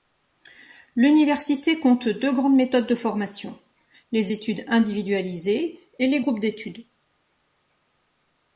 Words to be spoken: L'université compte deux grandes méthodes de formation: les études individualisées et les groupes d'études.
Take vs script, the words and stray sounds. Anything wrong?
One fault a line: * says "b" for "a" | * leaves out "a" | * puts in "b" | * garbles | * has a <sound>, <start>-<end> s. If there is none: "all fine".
all fine